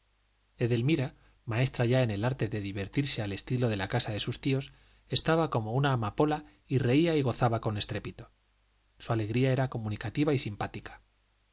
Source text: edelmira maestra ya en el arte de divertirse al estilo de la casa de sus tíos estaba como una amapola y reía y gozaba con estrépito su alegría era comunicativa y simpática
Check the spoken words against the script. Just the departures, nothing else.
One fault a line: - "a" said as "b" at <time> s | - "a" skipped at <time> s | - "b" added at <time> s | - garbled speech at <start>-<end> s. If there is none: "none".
none